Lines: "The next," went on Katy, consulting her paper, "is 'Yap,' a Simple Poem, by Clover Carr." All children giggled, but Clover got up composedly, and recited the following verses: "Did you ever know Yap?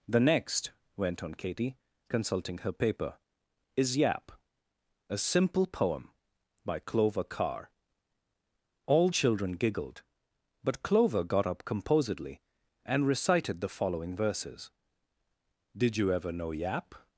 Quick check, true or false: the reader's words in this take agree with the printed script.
true